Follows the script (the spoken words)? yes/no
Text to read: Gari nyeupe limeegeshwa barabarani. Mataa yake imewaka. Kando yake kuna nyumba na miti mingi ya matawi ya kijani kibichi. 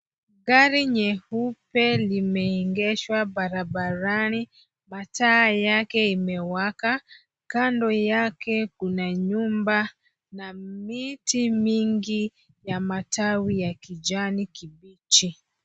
yes